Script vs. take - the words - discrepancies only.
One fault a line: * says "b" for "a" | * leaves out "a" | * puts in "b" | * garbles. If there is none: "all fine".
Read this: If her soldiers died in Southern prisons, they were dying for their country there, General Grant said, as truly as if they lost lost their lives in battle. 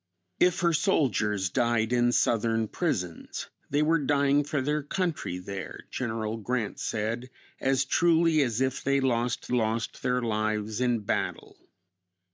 all fine